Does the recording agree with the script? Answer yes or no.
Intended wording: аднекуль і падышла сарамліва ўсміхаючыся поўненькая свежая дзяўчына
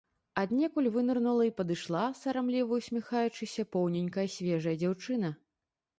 no